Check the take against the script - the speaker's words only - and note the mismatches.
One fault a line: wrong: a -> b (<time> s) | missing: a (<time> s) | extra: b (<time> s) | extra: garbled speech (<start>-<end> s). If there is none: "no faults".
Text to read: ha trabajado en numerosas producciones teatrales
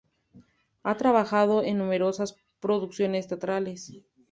no faults